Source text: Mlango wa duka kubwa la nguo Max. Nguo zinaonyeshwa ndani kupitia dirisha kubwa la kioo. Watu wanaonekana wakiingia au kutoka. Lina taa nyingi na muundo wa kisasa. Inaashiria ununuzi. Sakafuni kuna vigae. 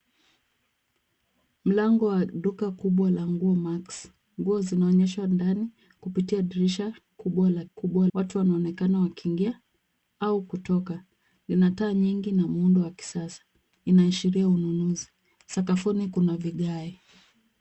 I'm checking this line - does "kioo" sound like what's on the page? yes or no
no